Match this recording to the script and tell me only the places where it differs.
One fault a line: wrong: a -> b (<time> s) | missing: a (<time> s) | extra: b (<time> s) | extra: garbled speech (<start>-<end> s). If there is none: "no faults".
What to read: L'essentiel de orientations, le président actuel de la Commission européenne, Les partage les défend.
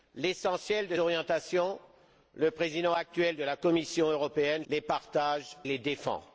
no faults